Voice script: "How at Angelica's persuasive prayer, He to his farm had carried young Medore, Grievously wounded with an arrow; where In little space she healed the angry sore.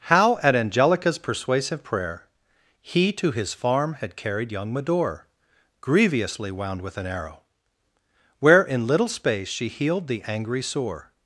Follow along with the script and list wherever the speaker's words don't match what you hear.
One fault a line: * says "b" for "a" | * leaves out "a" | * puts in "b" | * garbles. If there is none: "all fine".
* says "wound" for "wounded"